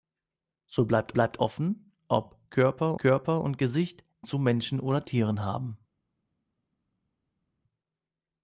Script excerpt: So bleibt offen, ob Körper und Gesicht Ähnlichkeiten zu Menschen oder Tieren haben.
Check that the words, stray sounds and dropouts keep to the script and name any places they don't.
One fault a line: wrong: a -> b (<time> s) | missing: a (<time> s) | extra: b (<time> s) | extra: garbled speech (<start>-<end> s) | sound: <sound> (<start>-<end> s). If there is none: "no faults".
extra: bleibt (1.1 s)
extra: Körper (3.0 s)
missing: Ähnlichkeiten (4.0 s)